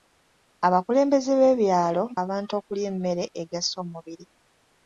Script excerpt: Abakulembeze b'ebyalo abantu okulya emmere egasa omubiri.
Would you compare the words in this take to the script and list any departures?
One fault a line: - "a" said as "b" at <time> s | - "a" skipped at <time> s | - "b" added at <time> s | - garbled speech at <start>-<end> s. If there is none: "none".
none